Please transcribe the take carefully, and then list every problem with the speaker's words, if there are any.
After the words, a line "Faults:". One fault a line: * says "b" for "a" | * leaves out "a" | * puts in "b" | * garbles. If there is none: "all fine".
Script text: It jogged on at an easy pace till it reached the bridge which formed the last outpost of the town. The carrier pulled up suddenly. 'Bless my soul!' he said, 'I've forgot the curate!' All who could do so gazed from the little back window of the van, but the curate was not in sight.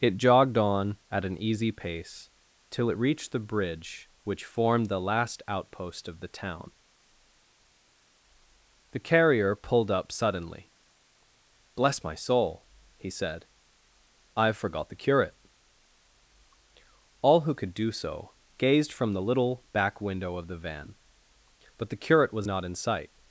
It jogged on at an easy pace till it reached the bridge which formed the last outpost of the town. The carrier pulled up suddenly. 'Bless my soul!' he said, 'I've forgot the curate!' All who could do so gazed from the little back window of the van, but the curate was not in sight.
Faults:
all fine